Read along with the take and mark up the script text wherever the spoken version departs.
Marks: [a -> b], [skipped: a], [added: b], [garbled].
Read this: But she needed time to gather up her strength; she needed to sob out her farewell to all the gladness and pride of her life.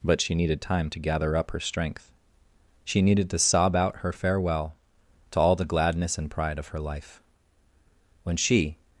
But she needed time to gather up her strength; she needed to sob out her farewell to all the gladness and pride of her life. [added: When she]